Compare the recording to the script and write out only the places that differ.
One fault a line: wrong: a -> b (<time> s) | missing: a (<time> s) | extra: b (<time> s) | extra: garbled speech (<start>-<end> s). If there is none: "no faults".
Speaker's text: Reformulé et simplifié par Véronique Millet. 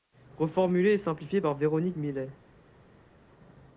no faults